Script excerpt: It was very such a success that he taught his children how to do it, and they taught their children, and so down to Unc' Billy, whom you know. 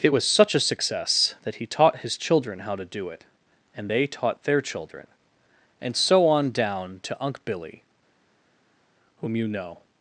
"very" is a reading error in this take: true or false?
true